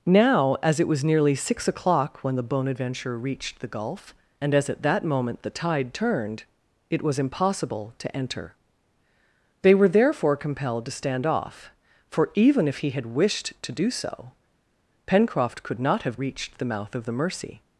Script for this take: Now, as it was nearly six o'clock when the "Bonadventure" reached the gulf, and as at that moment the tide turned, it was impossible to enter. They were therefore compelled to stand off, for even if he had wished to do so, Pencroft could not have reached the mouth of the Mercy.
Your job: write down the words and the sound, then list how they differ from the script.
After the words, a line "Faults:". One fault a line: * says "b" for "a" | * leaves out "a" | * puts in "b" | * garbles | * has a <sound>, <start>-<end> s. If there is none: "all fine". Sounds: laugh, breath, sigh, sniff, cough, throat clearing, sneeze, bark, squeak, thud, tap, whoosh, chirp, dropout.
Now, as it was nearly six o'clock when the "Bonadventure" reached the gulf, and as at that moment the tide turned, it was impossible to enter. They were therefore compelled to stand off, for even if he had wished to do so, Pencroft could not have reached the mouth of the Mercy.
Faults:
all fine